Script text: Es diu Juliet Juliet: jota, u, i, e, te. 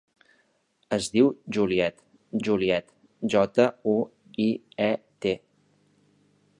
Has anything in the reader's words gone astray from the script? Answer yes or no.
no